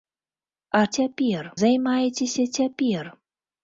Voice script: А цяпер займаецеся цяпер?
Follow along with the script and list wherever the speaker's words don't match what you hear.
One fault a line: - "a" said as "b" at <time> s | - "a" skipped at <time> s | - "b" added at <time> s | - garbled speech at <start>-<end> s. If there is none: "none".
none